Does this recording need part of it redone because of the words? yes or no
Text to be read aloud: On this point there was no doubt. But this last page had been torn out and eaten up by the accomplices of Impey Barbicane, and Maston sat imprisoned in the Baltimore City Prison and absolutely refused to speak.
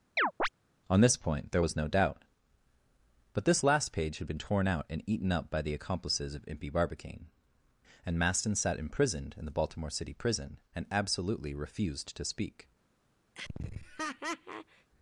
no